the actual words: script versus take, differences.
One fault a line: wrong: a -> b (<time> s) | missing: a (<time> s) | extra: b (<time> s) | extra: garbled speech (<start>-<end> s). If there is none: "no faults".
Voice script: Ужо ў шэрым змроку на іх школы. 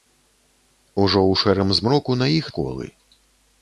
no faults